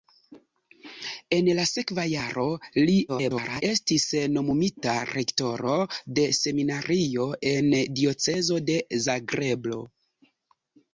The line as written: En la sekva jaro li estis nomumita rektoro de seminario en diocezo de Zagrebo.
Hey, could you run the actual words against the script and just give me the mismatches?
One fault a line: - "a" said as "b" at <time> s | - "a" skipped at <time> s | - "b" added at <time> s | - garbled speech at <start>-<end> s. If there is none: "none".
- garbled speech at 3.1-3.6 s